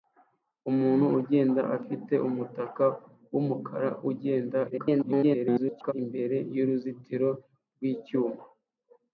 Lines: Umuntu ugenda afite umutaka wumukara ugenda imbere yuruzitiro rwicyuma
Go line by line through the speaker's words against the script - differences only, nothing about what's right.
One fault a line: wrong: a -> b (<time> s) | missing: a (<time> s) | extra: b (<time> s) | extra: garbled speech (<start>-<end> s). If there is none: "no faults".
extra: garbled speech (4.7-5.9 s)